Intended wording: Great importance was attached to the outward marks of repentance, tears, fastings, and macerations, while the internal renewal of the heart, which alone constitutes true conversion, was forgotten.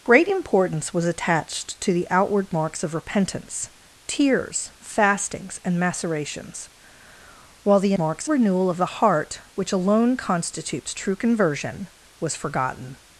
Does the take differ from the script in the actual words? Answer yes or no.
yes